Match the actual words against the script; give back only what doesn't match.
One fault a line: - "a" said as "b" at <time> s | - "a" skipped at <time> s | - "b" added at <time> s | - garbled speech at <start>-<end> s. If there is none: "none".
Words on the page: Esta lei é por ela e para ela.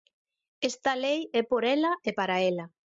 none